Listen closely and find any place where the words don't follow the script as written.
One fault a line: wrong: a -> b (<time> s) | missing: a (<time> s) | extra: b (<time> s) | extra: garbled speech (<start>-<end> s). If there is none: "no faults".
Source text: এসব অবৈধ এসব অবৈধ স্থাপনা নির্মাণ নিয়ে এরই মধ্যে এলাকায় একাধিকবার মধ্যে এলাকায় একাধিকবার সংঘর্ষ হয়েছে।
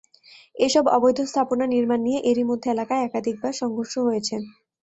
missing: এসব অবৈধ (1.2 s)
missing: মধ্যে এলাকায় একাধিকবার (3.5 s)